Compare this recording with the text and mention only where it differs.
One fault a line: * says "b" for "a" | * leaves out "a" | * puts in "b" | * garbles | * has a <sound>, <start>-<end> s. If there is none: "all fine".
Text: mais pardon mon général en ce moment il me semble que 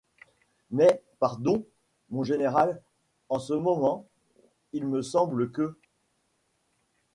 all fine